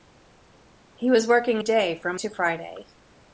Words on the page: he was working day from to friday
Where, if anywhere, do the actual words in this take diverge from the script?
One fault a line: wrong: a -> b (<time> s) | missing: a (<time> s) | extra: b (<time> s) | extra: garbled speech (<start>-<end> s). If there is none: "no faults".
no faults